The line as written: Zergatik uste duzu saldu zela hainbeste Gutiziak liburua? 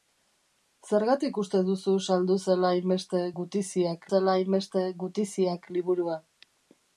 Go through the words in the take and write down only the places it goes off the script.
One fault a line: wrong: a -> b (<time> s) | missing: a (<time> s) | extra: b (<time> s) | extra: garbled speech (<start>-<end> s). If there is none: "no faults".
extra: zela hainbeste Gutiziak (4.1 s)